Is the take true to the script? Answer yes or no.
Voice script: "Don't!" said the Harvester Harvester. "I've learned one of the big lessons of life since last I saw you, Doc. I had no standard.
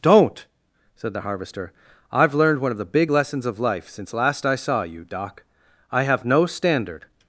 no